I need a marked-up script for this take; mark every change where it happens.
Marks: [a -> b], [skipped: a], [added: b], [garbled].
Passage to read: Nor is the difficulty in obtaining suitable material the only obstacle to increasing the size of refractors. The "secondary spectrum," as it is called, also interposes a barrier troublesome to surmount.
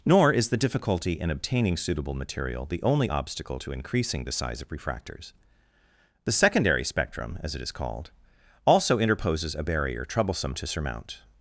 Nor is the difficulty in obtaining suitable material the only obstacle to increasing the size of refractors. The "secondary spectrum," as it is called, also interposes a barrier troublesome to surmount.